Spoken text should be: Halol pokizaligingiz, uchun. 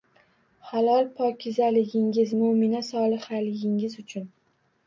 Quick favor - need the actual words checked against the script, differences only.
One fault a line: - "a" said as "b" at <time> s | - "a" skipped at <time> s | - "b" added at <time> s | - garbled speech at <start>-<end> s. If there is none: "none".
- "mo‘mina solihaligingiz" added at 2.4 s